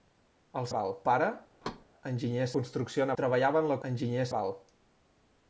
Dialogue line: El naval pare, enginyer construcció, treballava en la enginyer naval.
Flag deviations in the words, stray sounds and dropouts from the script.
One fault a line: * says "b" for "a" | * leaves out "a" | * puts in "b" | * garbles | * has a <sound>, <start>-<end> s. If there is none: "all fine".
* has a thud, 1.6-1.9 s